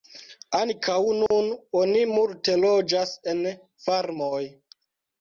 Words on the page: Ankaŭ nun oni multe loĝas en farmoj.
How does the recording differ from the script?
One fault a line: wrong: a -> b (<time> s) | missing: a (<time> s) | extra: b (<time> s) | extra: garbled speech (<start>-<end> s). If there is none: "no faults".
no faults